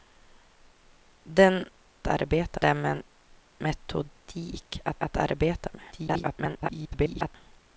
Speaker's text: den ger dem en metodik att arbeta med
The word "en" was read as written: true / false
true